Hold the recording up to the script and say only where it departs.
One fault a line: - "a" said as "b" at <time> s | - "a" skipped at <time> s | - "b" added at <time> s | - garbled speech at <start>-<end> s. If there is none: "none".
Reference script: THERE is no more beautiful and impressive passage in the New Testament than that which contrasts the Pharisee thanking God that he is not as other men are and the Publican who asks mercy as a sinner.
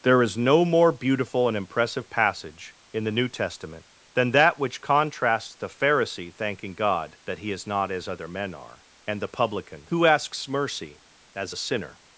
none